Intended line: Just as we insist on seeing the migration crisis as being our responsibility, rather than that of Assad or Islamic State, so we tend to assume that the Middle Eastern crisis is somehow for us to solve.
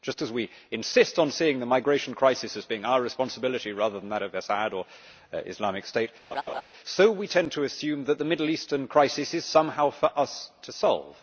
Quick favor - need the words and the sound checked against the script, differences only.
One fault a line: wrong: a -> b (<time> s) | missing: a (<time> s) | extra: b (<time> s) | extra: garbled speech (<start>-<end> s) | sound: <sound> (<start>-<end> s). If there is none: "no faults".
sound: laugh (6.3-6.6 s)